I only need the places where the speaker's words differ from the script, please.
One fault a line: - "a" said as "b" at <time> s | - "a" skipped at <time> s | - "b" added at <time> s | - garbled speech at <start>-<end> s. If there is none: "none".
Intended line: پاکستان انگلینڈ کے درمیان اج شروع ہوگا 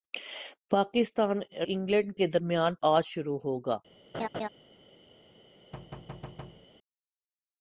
none